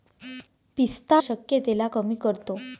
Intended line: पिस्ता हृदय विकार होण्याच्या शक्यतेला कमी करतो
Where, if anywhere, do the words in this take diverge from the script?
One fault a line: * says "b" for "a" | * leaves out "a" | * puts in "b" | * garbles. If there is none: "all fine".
* leaves out "हृदय विकार होण्याच्या"